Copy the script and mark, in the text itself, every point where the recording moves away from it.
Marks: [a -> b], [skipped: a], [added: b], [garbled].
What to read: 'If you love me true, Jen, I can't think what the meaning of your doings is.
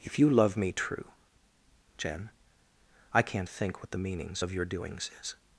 'If you love me true, Jen, I can't think what the [meaning -> meanings] of your doings is.